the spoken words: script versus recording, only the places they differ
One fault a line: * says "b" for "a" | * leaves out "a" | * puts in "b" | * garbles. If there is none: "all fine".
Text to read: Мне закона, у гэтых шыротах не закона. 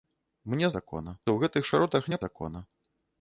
all fine